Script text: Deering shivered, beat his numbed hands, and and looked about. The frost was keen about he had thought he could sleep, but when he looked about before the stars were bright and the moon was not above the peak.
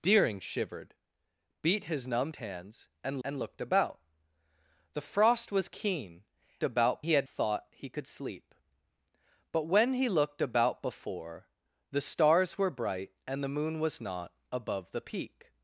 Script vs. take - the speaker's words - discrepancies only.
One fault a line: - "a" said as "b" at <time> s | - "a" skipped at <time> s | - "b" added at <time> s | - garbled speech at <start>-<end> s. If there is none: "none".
none